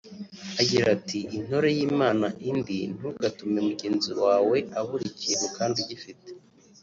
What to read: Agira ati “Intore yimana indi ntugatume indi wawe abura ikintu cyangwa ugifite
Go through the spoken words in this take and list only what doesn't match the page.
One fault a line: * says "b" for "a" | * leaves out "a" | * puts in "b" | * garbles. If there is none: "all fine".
* says "mugenzi" for "indi"
* says "kandi" for "cyangwa"